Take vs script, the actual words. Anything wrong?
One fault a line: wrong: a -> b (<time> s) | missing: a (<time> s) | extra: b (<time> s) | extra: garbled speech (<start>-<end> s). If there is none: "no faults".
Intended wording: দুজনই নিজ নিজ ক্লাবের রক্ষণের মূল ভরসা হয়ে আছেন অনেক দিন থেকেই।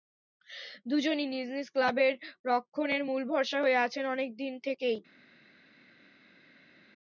no faults